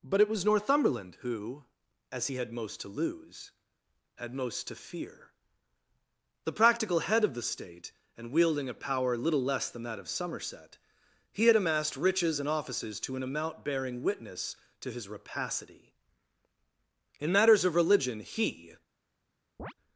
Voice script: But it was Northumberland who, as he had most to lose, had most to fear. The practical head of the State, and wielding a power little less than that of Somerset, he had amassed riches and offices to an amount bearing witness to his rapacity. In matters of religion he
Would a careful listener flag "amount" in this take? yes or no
no